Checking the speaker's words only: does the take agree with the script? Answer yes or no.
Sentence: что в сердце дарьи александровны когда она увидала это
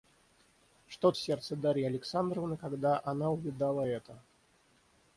yes